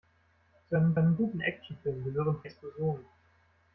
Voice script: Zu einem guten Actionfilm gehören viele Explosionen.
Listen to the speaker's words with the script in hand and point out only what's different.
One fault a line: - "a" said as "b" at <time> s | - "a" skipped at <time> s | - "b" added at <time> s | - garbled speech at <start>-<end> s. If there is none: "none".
- "einem" added at 1.0 s
- "viele" skipped at 2.4 s